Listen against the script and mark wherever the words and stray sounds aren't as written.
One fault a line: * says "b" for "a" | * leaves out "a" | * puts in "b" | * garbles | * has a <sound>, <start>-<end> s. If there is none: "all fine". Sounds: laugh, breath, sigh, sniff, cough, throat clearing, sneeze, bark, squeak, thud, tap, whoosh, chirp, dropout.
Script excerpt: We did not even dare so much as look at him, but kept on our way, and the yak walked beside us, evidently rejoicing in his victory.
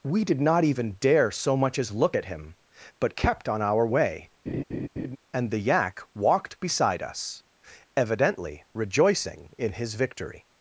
* has a laugh, 4.5-5.2 s